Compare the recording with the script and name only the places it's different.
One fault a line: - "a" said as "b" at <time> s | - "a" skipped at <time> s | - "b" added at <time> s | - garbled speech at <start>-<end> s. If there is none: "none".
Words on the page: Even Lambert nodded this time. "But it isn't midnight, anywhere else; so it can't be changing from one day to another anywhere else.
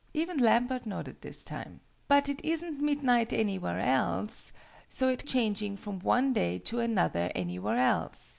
- "can't be" skipped at 5.2 s